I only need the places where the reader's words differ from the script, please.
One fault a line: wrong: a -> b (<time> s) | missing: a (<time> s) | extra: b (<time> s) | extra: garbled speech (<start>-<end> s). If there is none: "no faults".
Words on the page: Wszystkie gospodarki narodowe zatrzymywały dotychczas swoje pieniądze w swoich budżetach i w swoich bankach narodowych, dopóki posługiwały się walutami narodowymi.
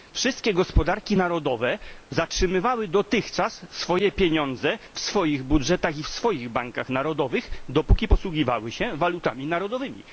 no faults